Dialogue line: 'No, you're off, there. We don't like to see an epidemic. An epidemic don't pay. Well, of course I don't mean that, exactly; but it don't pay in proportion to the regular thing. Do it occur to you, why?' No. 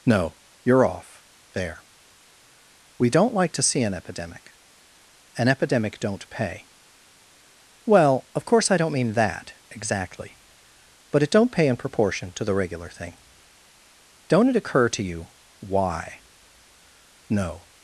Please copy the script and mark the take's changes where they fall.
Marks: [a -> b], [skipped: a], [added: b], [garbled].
'No, you're off, there. We don't like to see an epidemic. An epidemic don't pay. Well, of course I don't mean that, exactly; but it don't pay in proportion to the regular thing. [Do -> Don't] it occur to you, why?' No.